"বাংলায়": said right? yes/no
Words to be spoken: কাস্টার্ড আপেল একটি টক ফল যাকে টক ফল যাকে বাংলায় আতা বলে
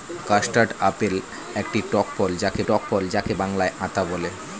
yes